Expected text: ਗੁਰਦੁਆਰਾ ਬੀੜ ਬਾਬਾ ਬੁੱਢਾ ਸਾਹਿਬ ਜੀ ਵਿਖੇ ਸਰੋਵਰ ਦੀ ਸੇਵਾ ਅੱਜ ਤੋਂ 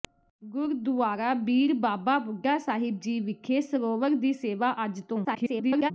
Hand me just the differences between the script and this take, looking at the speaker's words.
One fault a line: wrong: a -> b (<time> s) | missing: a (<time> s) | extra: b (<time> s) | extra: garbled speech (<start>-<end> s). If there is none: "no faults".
extra: garbled speech (5.2-5.9 s)